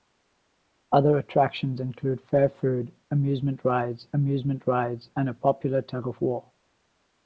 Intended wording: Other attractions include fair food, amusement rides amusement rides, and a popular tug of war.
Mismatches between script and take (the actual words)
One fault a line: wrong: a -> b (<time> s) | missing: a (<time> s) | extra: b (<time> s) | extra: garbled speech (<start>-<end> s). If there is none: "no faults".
no faults